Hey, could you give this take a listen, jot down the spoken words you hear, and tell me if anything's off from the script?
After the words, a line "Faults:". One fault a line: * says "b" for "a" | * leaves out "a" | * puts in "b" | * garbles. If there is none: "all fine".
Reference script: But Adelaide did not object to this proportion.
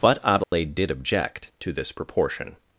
But Adelaide did object to this proportion.
Faults:
* leaves out "not"